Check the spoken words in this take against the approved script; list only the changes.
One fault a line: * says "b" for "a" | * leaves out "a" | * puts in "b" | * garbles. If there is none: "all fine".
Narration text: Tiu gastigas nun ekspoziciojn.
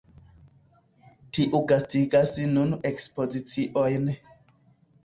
all fine